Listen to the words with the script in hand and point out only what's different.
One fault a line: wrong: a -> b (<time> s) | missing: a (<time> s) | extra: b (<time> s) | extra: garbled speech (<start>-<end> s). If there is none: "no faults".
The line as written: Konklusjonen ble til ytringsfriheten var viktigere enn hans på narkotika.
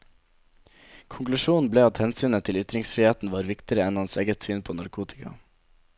extra: at hensynet (1.9 s)
extra: eget syn (4.2 s)